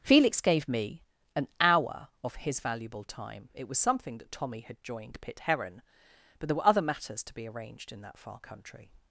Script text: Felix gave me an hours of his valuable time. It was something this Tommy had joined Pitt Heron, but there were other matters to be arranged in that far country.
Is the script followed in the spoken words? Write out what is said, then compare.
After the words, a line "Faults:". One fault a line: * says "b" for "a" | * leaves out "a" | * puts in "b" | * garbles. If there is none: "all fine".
Felix gave me an hour of his valuable time. It was something that Tommy had joined Pitt Heron, but there were other matters to be arranged in that far country.
Faults:
* says "hour" for "hours"
* says "that" for "this"